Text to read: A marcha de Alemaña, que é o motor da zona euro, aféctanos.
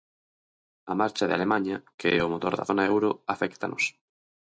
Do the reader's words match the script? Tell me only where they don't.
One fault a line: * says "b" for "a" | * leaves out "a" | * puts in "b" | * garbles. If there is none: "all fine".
all fine